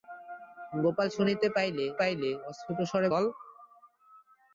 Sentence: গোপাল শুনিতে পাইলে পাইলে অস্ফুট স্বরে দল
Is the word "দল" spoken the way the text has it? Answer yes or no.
yes